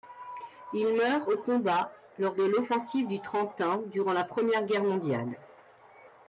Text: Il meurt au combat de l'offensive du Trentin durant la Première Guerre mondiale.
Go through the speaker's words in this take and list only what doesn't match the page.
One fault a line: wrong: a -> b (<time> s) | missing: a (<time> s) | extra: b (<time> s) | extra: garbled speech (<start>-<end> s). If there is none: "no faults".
extra: lors (2.2 s)